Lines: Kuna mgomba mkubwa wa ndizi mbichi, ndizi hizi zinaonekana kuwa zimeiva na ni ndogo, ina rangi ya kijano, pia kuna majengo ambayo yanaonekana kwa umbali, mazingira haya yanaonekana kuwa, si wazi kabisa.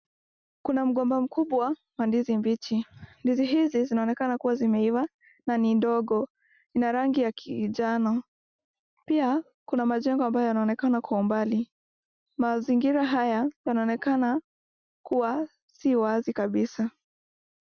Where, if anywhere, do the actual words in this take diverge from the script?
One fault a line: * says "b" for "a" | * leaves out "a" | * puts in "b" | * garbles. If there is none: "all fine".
all fine